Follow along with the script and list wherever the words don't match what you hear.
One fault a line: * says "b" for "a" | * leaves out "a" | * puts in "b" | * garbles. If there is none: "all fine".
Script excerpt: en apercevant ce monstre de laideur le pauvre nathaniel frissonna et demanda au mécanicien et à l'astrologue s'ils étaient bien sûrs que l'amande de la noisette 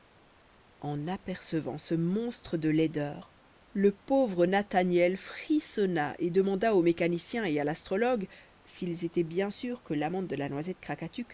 all fine